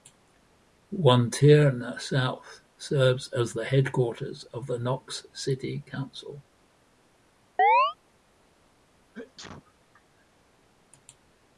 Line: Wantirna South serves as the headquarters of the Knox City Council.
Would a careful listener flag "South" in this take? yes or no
no